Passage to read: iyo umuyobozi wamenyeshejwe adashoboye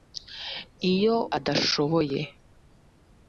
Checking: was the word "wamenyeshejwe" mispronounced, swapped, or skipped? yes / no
yes